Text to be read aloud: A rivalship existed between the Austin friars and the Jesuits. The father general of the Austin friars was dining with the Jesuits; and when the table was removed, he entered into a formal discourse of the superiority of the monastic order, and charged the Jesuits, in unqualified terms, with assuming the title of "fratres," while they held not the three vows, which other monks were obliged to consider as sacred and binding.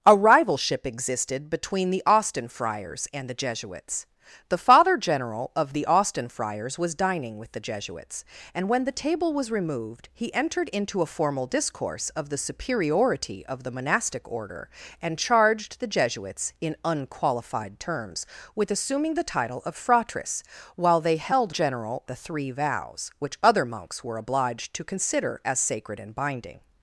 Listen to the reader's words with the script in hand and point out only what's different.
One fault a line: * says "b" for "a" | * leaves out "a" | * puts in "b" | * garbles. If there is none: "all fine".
* says "general" for "not"